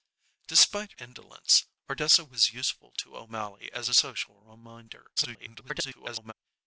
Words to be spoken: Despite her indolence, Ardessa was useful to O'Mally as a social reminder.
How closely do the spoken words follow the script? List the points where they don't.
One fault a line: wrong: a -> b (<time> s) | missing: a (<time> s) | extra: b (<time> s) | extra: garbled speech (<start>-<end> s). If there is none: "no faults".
missing: her (0.9 s)
extra: garbled speech (5.2-6.3 s)